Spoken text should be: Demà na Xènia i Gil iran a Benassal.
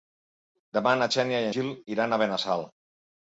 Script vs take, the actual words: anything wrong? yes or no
no